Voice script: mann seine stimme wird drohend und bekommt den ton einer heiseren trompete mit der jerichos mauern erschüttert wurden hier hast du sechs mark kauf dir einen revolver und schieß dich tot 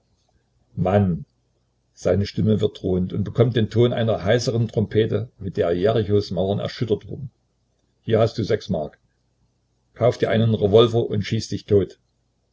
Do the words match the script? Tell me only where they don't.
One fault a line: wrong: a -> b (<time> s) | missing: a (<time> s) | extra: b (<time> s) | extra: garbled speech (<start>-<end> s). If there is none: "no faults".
no faults